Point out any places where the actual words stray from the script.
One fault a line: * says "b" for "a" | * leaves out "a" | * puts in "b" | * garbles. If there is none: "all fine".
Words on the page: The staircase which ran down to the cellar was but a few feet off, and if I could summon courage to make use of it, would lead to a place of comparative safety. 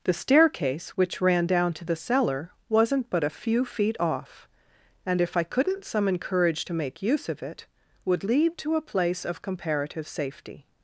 * says "wasn't" for "was"
* says "couldn't" for "could"